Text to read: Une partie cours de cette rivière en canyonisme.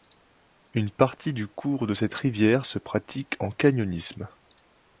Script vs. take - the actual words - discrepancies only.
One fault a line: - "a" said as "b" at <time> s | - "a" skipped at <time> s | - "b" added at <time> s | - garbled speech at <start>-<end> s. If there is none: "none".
- "du" added at 1.3 s
- "se pratique" added at 2.6 s